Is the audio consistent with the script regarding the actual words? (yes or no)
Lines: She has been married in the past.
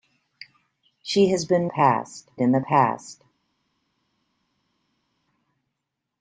no